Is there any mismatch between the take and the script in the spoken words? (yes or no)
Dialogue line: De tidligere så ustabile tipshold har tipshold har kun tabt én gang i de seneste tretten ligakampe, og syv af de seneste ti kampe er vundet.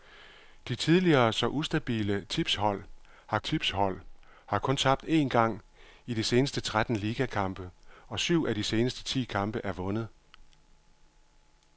no